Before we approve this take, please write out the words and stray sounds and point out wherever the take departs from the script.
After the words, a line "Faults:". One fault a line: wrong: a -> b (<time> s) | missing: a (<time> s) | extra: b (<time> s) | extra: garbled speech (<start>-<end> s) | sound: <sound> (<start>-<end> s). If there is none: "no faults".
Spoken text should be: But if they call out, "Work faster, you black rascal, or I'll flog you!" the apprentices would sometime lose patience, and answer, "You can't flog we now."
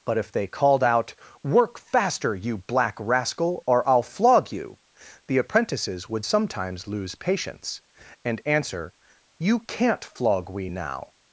But if they called out, "Work faster, you black rascal, or I'll flog you!" the apprentices would sometimes lose patience, and answer, "You can't flog we now."
Faults:
wrong: call -> called (0.5 s)
wrong: sometime -> sometimes (6.2 s)